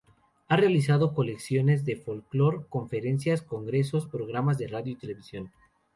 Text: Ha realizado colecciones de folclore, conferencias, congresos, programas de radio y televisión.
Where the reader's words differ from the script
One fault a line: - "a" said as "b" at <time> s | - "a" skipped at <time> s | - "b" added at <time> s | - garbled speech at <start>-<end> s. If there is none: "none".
none